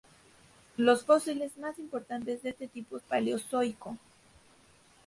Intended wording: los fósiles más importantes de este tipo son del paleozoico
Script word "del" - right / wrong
wrong